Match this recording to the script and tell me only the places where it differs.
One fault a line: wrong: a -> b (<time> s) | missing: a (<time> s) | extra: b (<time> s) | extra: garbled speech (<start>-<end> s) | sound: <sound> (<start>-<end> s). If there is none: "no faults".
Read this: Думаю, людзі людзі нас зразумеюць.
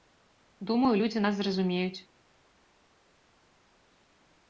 missing: людзі (1.2 s)